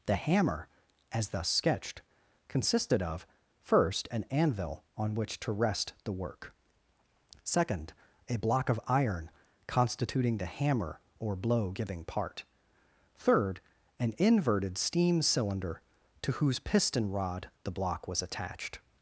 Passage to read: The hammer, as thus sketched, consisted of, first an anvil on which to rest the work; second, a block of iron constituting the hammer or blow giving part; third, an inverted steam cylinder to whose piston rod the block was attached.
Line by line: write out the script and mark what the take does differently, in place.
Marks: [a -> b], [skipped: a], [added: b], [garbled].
The hammer, as thus sketched, consisted of, first an anvil on which to rest the work; second, a block of iron constituting the hammer or blow giving part; third, an inverted steam cylinder to whose piston rod the block was attached.